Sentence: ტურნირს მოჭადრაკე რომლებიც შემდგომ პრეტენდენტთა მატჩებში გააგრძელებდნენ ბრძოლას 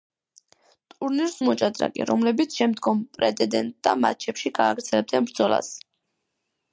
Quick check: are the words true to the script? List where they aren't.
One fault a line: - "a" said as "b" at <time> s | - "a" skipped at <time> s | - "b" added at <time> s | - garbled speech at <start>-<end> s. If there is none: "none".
none